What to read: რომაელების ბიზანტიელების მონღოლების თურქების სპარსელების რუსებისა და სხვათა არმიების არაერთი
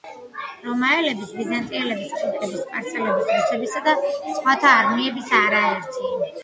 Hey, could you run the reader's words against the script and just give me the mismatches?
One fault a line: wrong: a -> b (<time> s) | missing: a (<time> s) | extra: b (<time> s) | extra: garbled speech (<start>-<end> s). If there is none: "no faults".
missing: მონღოლების (2.1 s)